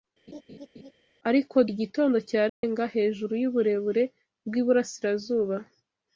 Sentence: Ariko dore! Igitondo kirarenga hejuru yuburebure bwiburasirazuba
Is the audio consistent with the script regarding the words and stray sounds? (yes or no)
no